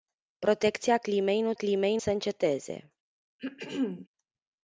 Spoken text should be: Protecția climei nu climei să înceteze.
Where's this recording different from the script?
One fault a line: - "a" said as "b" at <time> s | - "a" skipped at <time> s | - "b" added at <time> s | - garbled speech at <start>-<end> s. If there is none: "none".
none